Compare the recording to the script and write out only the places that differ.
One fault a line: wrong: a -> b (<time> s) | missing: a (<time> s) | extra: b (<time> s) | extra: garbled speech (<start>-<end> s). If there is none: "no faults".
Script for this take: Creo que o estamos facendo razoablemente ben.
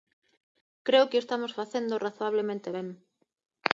no faults